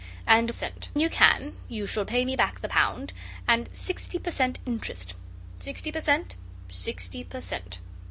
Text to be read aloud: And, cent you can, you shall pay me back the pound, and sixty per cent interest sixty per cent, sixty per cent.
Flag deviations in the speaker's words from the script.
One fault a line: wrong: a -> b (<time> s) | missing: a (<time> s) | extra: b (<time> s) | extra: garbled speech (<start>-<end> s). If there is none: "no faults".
no faults